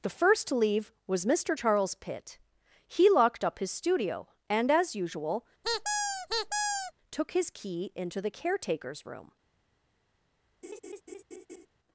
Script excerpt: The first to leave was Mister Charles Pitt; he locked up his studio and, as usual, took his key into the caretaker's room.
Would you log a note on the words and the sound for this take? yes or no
yes